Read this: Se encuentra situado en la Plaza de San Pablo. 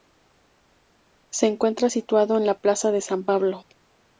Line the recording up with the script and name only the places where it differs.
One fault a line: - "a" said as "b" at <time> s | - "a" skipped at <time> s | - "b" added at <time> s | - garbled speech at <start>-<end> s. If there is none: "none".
none